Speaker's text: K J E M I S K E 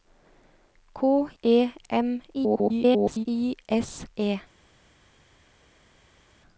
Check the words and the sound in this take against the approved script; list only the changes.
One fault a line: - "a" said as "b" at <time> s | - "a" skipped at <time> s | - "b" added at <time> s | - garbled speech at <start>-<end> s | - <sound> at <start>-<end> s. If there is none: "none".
- "J" skipped at 1.3 s
- garbled speech at 2.3-3.3 s
- "K" skipped at 4.1 s